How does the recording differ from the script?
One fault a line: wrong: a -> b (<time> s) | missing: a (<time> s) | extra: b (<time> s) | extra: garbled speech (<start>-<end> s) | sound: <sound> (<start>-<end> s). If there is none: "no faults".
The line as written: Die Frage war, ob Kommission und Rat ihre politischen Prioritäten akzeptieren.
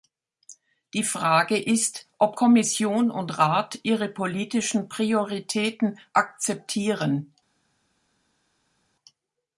wrong: war -> ist (1.6 s)